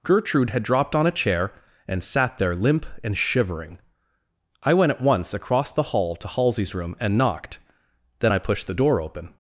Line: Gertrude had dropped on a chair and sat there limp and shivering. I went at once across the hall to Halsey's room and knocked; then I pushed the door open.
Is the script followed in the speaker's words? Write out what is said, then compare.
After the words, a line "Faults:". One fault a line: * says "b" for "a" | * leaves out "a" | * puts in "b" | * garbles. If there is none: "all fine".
Gertrude had dropped on a chair and sat there limp and shivering. I went at once across the hall to Halsey's room and knocked; then I pushed the door open.
Faults:
all fine